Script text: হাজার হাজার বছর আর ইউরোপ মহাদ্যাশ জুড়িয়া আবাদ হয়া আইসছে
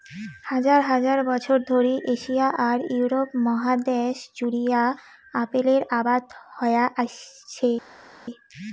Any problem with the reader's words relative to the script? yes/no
yes